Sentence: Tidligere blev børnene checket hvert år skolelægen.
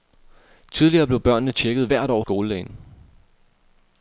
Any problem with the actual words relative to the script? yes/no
no